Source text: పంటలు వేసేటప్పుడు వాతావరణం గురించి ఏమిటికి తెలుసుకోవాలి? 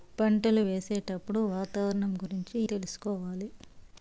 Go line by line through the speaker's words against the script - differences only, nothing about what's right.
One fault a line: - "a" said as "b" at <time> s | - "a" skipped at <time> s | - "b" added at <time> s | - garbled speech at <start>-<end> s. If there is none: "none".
- "ఏమిటికి" skipped at 2.6 s